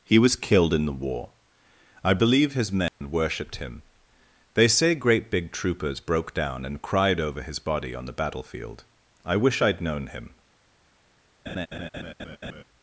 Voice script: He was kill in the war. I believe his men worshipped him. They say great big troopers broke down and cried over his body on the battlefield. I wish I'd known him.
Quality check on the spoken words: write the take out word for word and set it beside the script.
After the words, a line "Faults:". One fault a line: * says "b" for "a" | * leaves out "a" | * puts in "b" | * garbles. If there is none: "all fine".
He was killed in the war. I believe his men worshipped him. They say great big troopers broke down and cried over his body on the battlefield. I wish I'd known him.
Faults:
* says "killed" for "kill"